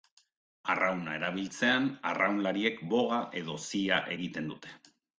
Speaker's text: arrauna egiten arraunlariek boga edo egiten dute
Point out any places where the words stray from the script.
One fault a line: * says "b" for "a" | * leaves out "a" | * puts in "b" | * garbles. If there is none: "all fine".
* says "erabiltzean" for "egiten"
* puts in "zia"